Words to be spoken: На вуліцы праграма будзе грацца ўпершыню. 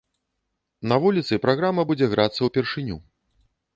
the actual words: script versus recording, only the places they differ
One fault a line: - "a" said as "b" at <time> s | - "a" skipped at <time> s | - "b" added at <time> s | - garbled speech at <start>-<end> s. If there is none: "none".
none